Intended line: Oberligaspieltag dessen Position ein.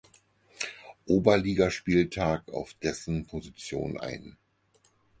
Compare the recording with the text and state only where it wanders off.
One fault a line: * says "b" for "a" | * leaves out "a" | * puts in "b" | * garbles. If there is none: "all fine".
* puts in "auf"